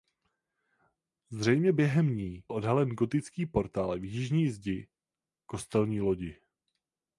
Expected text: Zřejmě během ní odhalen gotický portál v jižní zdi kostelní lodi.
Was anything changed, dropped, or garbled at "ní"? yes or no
no